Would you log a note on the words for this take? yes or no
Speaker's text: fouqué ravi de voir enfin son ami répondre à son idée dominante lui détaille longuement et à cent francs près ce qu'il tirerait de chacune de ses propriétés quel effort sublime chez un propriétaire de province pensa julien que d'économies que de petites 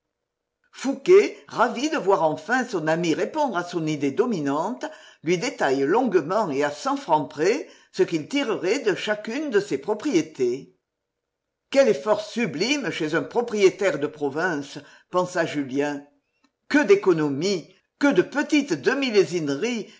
no